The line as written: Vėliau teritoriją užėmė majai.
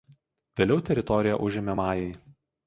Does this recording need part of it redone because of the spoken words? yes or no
no